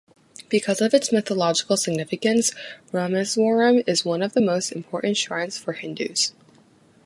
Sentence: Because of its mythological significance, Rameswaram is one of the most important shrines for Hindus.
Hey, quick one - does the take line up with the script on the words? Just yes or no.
yes